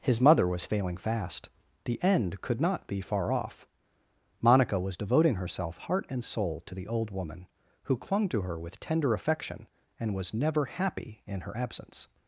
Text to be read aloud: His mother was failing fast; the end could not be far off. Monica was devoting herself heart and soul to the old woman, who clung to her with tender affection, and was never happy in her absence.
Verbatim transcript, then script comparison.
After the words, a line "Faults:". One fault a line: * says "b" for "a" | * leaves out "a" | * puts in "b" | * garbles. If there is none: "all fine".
His mother was failing fast; the end could not be far off. Monica was devoting herself heart and soul to the old woman, who clung to her with tender affection, and was never happy in her absence.
Faults:
all fine